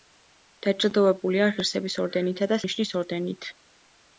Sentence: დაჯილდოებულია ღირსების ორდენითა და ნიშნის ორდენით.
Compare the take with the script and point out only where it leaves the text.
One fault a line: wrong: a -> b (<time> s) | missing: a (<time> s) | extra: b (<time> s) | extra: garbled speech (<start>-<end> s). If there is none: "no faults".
no faults